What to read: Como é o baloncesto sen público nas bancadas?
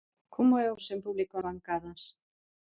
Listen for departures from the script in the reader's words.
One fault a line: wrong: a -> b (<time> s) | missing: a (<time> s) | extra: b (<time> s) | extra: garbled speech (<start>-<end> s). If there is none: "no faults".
missing: baloncesto (0.8 s)
missing: nas (1.4 s)